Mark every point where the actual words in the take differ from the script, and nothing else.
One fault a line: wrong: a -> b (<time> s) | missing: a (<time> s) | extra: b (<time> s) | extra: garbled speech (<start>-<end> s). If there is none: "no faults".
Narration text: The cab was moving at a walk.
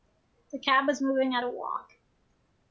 no faults